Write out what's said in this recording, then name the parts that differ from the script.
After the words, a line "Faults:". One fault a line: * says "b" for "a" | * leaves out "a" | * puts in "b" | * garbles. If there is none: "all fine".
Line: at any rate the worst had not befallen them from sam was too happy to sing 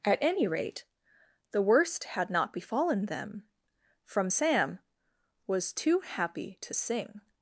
at any rate the worst had not befallen them from sam was too happy to sing
Faults:
all fine